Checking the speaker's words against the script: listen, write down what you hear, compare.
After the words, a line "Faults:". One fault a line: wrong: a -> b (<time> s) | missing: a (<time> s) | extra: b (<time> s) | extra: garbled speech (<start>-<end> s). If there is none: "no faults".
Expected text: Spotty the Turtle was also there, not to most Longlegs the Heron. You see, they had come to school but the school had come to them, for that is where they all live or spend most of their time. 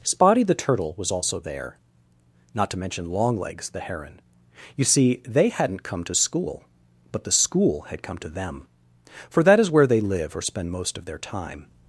Spotty the Turtle was also there, not to mention Longlegs the Heron. You see, they hadn't come to school but the school had come to them, for that is where they live or spend most of their time.
Faults:
wrong: most -> mention (2.8 s)
wrong: had -> hadn't (5.5 s)
missing: all (10.0 s)